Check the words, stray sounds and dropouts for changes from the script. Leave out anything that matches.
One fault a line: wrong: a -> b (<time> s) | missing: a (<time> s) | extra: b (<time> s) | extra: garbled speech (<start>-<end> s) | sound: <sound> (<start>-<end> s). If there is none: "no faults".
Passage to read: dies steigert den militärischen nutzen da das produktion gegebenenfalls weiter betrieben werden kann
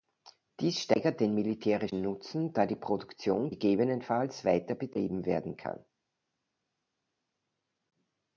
wrong: das -> die (2.6 s)